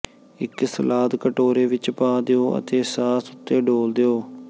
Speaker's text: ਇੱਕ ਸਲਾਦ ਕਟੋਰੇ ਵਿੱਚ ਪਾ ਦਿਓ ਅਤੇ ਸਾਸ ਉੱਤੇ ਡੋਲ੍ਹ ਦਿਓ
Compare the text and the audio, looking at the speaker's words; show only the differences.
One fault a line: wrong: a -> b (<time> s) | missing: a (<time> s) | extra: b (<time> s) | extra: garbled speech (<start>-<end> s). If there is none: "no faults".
no faults